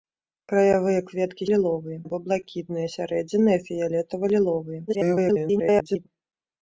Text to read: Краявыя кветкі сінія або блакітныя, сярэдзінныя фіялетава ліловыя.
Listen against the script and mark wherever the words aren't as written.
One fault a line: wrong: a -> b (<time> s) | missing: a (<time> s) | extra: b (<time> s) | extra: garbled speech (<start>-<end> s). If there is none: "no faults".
wrong: сінія -> ліловыя (1.5 s)
extra: garbled speech (4.9-6.1 s)